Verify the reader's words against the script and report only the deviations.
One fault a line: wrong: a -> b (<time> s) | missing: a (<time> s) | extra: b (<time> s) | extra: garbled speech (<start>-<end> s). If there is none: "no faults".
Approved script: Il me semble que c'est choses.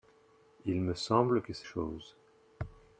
no faults